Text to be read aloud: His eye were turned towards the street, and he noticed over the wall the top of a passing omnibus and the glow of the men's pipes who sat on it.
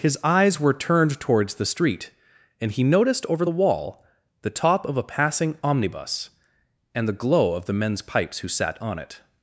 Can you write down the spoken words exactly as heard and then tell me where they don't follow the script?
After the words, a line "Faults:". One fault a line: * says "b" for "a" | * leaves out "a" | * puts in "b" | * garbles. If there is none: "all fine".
His eyes were turned towards the street, and he noticed over the wall the top of a passing omnibus and the glow of the men's pipes who sat on it.
Faults:
* says "eyes" for "eye"